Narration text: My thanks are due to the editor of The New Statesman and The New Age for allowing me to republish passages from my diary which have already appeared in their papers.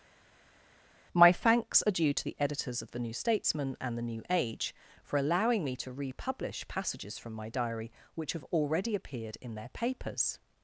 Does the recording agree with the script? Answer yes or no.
no